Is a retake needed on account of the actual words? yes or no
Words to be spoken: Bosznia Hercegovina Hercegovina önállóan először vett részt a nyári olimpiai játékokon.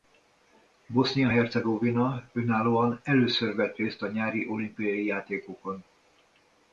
yes